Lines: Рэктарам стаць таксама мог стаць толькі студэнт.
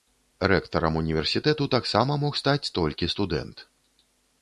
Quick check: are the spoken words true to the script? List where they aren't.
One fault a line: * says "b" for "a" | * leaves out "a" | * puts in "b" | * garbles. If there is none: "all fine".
* says "універсітэту" for "стаць"